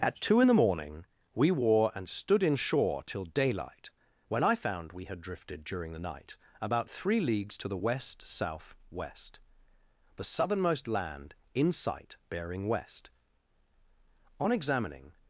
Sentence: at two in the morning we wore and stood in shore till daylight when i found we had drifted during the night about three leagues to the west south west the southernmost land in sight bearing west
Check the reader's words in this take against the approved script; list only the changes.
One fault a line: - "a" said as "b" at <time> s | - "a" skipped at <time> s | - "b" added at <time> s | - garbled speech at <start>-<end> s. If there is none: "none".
- "on examining" added at 14.4 s